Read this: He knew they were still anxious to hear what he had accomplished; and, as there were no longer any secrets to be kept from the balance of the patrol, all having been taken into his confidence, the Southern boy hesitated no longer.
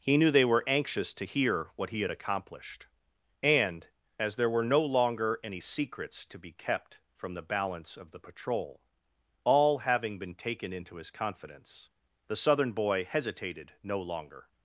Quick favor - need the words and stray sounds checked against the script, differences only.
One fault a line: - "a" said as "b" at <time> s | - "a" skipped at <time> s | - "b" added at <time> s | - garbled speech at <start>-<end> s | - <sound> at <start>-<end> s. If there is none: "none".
- "still" skipped at 0.6 s